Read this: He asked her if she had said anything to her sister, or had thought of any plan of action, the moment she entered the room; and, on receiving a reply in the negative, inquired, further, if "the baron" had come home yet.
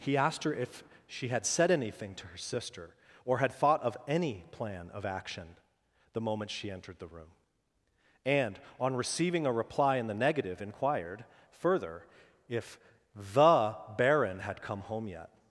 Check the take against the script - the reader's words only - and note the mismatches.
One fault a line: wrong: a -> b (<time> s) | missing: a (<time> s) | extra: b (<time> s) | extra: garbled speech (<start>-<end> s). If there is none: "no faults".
no faults